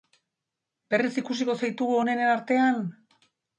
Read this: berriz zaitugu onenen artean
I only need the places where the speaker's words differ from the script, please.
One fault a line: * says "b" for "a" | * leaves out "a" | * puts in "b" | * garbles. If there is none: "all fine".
* puts in "ikusiko"